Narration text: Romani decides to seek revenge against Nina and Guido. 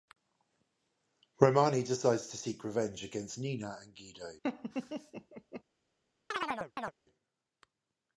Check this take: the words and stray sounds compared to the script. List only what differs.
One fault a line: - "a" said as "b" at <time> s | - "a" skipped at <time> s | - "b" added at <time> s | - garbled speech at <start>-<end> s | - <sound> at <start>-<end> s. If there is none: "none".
- laugh at 4.4-5.6 s
- chirp at 6.3-6.9 s